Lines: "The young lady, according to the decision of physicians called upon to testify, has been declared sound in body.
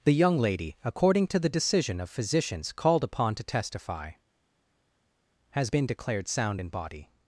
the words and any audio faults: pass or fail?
pass